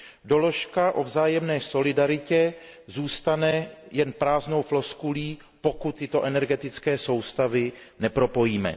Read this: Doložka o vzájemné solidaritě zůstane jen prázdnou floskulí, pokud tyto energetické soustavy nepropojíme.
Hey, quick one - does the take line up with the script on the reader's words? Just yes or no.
yes